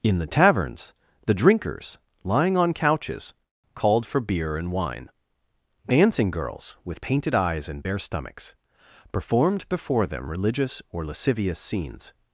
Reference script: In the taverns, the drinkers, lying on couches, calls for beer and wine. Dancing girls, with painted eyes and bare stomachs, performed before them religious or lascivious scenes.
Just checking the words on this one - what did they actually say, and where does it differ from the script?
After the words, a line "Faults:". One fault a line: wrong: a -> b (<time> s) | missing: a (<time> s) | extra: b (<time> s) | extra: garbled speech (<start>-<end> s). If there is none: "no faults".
In the taverns, the drinkers, lying on couches, called for beer and wine. Dancing girls, with painted eyes and bare stomachs, performed before them religious or lascivious scenes.
Faults:
wrong: calls -> called (3.8 s)